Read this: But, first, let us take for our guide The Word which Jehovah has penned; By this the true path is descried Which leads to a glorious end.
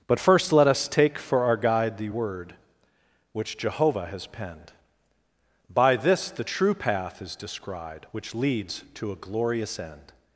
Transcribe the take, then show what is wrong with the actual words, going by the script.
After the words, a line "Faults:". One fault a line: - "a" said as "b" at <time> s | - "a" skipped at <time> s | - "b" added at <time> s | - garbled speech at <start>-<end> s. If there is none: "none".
But, first, let us take for our guide The Word which Jehovah has penned; By this the true path is descried Which leads to a glorious end.
Faults:
none